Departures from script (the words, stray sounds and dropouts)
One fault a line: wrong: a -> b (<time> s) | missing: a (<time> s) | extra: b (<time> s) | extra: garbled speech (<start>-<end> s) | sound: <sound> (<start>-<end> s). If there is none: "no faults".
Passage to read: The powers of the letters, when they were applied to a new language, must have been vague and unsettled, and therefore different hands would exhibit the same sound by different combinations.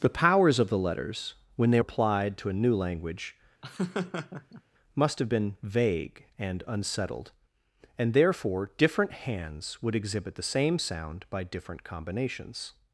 missing: were (1.8 s)
sound: laugh (3.6-4.6 s)